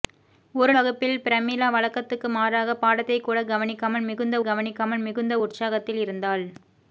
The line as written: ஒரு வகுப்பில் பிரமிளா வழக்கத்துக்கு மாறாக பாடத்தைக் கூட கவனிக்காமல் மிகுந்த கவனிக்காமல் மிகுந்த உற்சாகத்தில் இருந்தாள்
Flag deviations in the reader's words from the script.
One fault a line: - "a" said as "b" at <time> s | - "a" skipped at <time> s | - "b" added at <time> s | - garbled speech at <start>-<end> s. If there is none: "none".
none